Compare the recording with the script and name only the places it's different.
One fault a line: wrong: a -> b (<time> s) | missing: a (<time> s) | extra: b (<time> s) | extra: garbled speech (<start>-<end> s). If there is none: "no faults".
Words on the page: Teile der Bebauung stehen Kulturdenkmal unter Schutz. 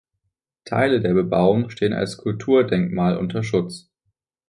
extra: als (1.9 s)